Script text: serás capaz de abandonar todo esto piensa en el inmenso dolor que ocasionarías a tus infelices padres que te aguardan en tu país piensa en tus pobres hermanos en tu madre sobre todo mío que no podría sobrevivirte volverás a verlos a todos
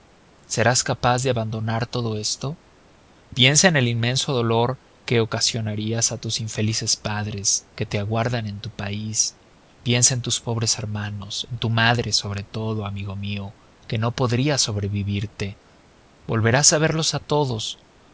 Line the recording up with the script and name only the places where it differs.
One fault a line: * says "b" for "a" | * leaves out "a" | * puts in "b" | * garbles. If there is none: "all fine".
* puts in "amigo"